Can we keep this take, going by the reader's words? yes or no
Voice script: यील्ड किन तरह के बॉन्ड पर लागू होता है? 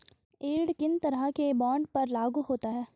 yes